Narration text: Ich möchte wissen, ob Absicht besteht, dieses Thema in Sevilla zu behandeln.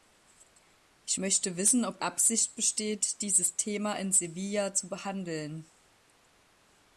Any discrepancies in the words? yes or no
no